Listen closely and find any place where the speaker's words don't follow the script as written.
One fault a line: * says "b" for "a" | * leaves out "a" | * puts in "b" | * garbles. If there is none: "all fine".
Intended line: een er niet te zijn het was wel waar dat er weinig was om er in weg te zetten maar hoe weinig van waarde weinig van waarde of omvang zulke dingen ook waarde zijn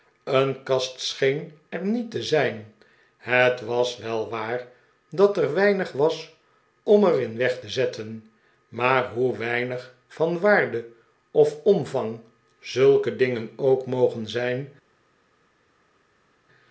* puts in "kast scheen"
* leaves out "weinig van waarde"
* says "mogen" for "waarde"